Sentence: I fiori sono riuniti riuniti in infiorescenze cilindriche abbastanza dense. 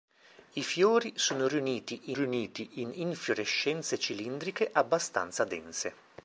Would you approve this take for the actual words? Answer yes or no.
yes